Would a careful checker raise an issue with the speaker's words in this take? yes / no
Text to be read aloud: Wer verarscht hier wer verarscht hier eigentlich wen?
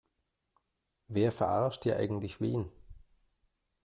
yes